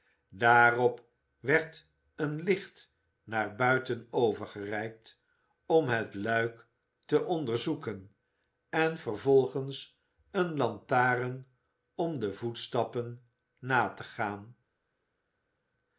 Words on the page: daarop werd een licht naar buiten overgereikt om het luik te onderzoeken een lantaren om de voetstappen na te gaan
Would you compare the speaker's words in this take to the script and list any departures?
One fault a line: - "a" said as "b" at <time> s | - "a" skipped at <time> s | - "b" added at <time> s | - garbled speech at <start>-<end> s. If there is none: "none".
- "en vervolgens" added at 8.7 s